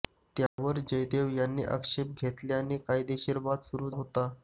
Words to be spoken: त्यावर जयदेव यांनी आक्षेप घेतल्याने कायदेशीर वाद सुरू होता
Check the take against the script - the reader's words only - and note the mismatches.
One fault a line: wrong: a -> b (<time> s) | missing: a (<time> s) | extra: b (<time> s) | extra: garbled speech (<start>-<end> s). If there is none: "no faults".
no faults